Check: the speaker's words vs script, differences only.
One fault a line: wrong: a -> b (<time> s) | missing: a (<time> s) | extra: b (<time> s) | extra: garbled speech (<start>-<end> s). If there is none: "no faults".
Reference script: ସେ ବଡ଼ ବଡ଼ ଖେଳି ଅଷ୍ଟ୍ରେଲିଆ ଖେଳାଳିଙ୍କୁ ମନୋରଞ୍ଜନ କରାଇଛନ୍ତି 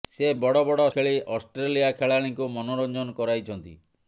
no faults